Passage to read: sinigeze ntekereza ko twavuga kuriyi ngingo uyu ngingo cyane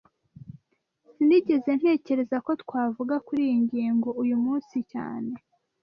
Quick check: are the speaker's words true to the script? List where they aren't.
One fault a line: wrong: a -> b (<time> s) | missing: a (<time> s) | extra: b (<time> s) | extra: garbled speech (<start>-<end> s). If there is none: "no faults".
wrong: ngingo -> munsi (4.4 s)